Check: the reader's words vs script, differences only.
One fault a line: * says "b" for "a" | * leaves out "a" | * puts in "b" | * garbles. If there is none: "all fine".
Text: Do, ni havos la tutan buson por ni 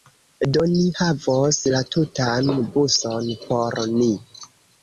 all fine